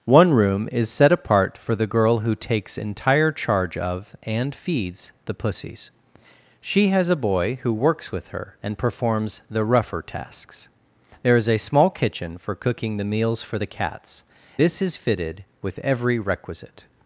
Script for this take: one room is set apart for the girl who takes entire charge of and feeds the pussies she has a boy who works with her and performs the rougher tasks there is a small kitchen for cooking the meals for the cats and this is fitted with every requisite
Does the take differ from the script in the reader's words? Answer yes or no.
yes